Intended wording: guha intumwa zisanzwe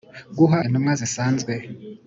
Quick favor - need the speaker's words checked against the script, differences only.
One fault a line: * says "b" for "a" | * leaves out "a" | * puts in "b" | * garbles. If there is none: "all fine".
all fine